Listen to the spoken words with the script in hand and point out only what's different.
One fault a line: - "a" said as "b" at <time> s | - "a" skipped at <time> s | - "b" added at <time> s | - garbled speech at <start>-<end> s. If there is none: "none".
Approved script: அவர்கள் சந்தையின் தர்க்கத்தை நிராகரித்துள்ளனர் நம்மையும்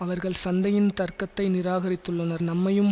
none